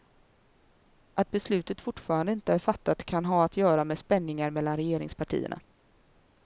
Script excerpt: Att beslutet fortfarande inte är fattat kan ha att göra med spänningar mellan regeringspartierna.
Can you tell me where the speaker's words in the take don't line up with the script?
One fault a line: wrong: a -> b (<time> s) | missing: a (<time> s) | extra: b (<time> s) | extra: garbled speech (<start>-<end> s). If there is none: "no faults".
no faults